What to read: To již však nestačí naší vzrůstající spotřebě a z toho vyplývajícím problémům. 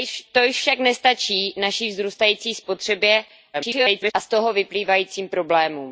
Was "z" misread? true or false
false